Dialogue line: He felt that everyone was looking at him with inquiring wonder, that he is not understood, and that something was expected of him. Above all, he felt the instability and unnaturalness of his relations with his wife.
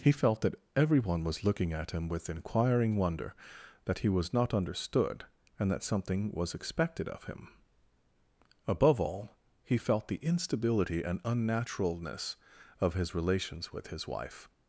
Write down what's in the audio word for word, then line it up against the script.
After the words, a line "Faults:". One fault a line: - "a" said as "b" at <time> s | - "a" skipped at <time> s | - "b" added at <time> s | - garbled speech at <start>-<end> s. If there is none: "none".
He felt that everyone was looking at him with inquiring wonder, that he was not understood, and that something was expected of him. Above all, he felt the instability and unnaturalness of his relations with his wife.
Faults:
- "is" said as "was" at 4.1 s